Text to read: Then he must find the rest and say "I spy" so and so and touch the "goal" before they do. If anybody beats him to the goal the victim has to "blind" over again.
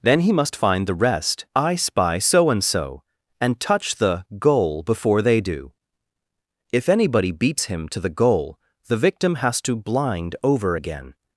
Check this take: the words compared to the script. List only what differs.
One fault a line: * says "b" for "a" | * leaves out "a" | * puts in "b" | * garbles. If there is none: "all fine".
* leaves out "and say"